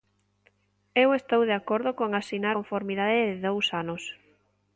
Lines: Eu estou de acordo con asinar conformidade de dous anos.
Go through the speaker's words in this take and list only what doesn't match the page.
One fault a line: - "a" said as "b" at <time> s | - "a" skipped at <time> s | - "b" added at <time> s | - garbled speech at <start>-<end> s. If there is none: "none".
none